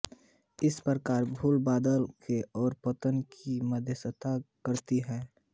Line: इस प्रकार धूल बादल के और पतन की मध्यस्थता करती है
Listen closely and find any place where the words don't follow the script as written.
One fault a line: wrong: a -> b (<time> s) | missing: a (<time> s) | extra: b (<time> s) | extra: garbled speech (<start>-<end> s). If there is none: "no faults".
no faults